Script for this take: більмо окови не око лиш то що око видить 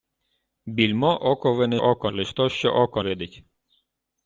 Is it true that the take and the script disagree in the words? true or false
false